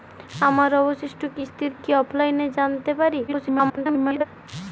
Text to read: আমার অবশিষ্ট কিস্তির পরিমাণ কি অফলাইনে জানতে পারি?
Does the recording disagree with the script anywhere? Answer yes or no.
yes